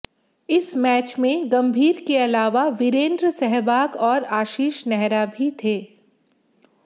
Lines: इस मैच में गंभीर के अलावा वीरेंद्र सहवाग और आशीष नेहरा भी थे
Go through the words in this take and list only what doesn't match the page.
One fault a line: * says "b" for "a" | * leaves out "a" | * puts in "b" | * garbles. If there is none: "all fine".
all fine